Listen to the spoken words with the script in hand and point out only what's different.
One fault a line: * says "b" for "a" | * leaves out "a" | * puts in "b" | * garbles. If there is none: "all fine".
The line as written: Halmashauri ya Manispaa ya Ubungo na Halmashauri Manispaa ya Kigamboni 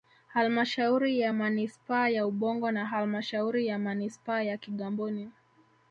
* puts in "ya"